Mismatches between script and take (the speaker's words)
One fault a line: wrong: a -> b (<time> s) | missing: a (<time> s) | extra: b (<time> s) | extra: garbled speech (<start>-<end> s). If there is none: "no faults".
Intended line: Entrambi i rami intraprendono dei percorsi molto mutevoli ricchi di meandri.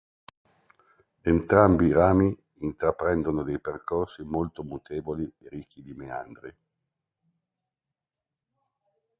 extra: e (5.4 s)